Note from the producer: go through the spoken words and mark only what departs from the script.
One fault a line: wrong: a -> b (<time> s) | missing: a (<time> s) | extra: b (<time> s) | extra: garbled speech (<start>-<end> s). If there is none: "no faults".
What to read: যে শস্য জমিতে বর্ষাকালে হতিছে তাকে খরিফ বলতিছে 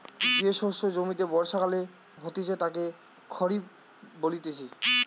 no faults